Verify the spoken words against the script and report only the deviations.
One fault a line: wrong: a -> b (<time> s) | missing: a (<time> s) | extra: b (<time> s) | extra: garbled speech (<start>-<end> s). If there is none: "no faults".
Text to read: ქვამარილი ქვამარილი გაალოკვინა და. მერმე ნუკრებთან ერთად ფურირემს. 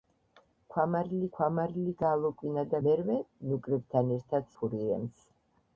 no faults